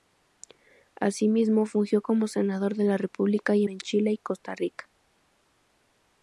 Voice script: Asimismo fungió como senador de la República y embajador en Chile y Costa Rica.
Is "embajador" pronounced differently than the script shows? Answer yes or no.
yes